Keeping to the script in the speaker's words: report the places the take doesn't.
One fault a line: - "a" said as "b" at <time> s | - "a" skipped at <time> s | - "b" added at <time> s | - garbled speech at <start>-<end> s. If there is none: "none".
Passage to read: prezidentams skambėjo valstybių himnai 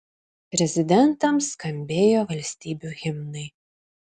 none